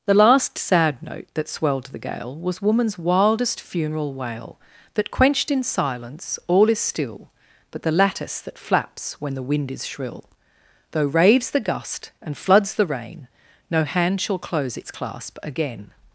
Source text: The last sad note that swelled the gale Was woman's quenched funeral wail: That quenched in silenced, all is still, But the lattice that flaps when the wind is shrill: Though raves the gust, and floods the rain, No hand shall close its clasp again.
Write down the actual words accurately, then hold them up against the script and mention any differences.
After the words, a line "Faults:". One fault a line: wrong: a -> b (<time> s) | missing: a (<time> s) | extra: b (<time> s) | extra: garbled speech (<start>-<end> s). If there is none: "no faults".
The last sad note that swelled the gale Was woman's wildest funeral wail: That quenched in silence, all is still, But the lattice that flaps when the wind is shrill: Though raves the gust, and floods the rain, No hand shall close its clasp again.
Faults:
wrong: quenched -> wildest (3.0 s)
wrong: silenced -> silence (5.6 s)